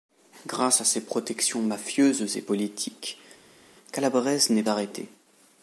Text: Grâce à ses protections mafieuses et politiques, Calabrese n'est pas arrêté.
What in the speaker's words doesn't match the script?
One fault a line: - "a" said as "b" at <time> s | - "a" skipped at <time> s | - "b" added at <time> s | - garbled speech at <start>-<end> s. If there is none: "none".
- "pas" skipped at 4.6 s